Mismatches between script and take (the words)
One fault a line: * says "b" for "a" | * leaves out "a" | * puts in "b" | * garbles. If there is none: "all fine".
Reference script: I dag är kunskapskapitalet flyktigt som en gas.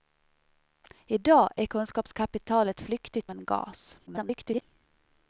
* leaves out "som"
* garbles